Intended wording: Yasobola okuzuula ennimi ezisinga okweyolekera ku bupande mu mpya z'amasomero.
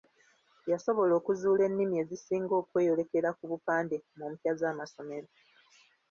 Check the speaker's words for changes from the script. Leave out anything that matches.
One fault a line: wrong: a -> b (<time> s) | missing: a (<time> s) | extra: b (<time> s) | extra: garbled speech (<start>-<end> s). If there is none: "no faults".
no faults